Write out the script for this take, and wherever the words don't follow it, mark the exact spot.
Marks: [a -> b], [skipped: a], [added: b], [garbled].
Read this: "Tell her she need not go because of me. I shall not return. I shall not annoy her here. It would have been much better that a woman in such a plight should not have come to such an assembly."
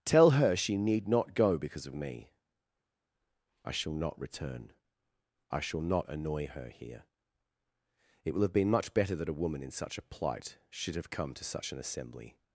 "Tell her she need not go because of me. I shall not return. I shall not annoy her here. It [would -> will] have been much better that a woman in such a plight should [skipped: not] have come to such an assembly."